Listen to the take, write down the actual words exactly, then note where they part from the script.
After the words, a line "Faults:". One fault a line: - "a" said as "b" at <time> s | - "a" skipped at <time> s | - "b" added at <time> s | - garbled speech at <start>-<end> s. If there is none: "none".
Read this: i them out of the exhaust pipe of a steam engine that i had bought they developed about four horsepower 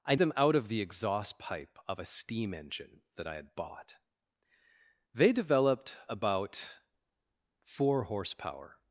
i them out of the exhaust pipe of a steam engine that i had bought they developed about four horsepower
Faults:
none